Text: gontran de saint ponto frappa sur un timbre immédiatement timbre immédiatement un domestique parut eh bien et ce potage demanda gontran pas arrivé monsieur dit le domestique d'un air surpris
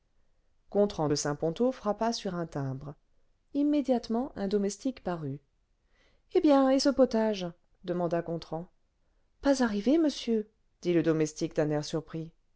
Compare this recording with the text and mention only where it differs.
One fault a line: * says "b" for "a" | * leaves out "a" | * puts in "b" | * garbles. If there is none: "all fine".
* leaves out "timbre immédiatement"